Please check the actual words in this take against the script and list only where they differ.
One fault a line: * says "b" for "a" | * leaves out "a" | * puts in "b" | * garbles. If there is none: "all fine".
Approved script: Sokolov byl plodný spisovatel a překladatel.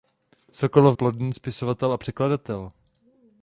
* leaves out "byl"